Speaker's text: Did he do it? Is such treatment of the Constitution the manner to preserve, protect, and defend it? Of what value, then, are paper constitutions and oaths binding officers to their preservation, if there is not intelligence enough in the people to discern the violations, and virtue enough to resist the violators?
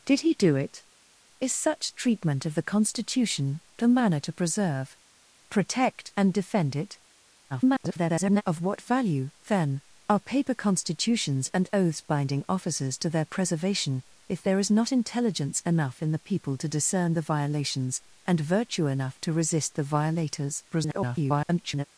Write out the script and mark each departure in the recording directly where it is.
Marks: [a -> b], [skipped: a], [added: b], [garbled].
Did he do it? Is such treatment of the Constitution the manner to preserve, protect, and defend it? [garbled] Of what value, then, are paper constitutions and oaths binding officers to their preservation, if there is not intelligence enough in the people to discern the violations, and virtue enough to resist the violators? [garbled]